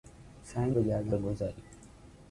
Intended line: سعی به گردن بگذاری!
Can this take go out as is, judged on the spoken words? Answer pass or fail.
pass